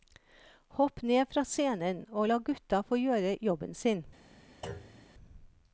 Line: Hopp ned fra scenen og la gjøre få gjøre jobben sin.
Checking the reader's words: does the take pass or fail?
fail